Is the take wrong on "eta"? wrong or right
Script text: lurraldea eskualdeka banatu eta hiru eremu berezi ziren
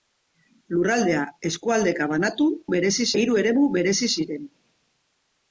wrong